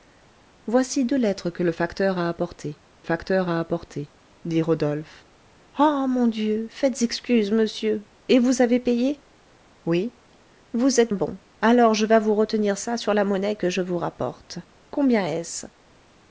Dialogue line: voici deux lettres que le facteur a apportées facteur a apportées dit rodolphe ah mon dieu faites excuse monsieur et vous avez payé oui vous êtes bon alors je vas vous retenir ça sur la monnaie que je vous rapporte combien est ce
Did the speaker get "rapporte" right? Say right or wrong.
right